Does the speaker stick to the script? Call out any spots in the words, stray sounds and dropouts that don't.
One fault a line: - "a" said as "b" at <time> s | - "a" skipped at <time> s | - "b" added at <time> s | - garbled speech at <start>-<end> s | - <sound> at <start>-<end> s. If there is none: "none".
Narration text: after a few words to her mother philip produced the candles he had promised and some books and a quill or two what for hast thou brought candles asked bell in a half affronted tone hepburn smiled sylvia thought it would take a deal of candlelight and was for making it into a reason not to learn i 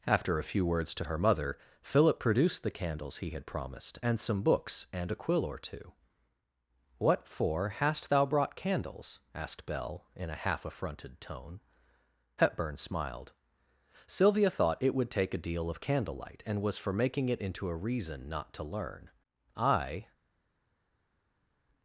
none